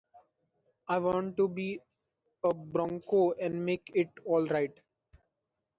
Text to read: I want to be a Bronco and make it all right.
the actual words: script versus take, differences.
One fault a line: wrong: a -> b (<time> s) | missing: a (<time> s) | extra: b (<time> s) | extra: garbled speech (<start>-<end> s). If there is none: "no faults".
no faults